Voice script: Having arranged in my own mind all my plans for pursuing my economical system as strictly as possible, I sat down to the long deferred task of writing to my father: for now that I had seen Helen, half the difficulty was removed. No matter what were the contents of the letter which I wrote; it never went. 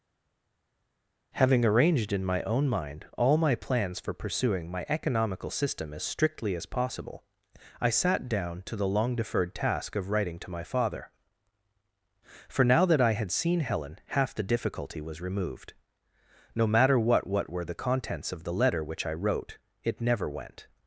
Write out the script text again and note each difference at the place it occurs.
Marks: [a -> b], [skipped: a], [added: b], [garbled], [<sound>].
Having arranged in my own mind all my plans for pursuing my economical system as strictly as possible, I sat down to the long deferred task of writing to my father: for now that I had seen Helen, half the difficulty was removed. No matter what [added: what] were the contents of the letter which I wrote; it never went.